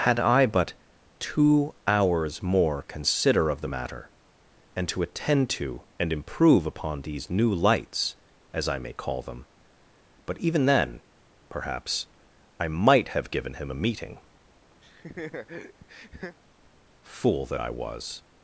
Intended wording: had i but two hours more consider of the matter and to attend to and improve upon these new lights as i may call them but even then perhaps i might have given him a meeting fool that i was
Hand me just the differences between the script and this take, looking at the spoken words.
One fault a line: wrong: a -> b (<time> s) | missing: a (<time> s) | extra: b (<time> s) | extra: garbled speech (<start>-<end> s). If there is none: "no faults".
no faults